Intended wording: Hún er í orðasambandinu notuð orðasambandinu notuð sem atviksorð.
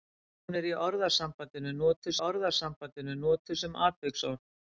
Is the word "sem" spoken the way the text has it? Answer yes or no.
yes